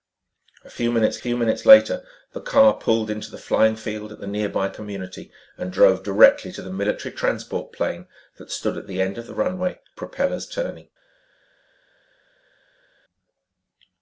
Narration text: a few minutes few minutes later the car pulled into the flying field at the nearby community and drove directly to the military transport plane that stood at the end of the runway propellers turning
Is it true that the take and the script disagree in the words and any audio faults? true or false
false